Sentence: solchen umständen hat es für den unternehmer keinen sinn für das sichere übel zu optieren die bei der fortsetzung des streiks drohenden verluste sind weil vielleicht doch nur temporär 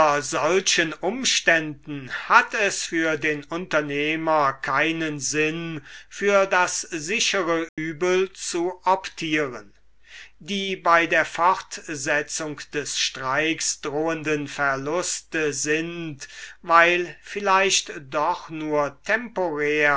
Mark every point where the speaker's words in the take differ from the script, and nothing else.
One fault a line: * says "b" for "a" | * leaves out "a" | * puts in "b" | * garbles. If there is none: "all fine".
all fine